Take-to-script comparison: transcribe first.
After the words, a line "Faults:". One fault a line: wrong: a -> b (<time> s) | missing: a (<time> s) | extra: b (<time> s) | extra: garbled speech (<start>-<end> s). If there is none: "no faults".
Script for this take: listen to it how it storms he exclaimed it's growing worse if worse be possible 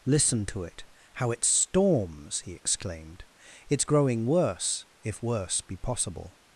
listen to it how it storms he exclaimed it's growing worse if worse be possible
Faults:
no faults